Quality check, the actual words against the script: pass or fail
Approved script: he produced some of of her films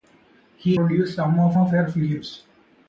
pass